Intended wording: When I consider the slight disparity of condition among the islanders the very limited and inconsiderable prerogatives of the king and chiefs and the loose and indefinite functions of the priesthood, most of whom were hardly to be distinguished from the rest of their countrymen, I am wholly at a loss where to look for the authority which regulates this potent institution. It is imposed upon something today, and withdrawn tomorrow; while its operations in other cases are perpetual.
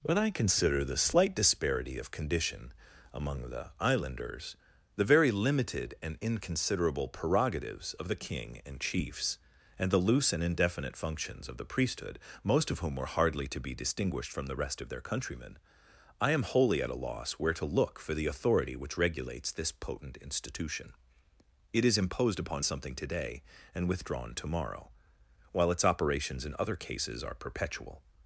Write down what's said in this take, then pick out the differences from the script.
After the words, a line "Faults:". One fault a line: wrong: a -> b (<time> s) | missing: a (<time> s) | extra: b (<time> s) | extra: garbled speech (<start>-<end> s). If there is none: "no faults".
When I consider the slight disparity of condition among the islanders the very limited and inconsiderable prerogatives of the king and chiefs and the loose and indefinite functions of the priesthood, most of whom were hardly to be distinguished from the rest of their countrymen, I am wholly at a loss where to look for the authority which regulates this potent institution. It is imposed upon something today, and withdrawn tomorrow; while its operations in other cases are perpetual.
Faults:
no faults